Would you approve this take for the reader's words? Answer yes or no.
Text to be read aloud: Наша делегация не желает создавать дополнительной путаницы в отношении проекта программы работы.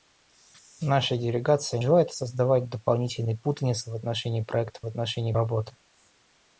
no